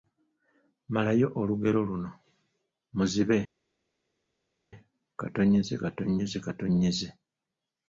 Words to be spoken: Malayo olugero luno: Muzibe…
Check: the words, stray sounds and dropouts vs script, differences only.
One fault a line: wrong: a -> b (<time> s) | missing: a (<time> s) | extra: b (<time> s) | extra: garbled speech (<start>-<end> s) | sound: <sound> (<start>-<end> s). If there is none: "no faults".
no faults